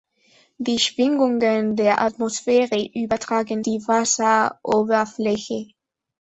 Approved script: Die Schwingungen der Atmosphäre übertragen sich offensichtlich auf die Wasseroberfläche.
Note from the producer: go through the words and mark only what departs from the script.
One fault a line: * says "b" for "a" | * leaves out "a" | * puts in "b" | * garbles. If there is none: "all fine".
* leaves out "sich offensichtlich auf"